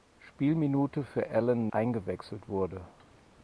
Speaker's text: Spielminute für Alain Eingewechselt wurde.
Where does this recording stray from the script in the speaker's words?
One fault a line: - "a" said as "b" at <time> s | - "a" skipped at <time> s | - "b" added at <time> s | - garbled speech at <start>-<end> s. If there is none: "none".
none